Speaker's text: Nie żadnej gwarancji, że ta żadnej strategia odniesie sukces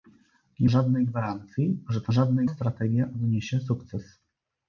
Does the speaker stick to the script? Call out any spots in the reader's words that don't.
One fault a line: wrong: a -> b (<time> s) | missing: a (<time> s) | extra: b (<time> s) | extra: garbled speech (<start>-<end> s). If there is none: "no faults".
no faults